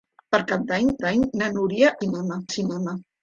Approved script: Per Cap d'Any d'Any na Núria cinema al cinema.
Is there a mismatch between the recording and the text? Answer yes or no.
no